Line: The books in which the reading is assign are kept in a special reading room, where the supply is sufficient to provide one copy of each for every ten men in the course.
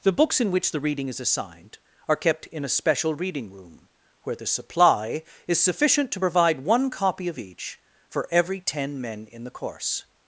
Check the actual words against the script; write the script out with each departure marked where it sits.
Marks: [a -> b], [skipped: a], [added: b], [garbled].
The books in which the reading is [assign -> assigned] are kept in a special reading room, where the supply is sufficient to provide one copy of each for every ten men in the course.